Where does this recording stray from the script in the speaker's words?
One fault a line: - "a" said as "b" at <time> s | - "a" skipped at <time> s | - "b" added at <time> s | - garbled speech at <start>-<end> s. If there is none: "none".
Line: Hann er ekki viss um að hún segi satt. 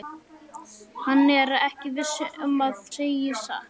- "hún" skipped at 2.8 s